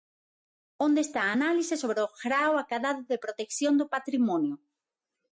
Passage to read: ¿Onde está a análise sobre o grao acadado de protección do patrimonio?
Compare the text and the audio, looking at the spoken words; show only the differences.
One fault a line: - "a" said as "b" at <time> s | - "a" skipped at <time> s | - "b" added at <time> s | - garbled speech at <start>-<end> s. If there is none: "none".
none